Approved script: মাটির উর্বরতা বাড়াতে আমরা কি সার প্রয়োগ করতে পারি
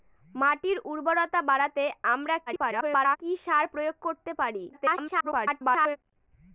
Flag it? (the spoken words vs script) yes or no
yes